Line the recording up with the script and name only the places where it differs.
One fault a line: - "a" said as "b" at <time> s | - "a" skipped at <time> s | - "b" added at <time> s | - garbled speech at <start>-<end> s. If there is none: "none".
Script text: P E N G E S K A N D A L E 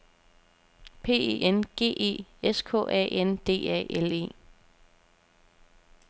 none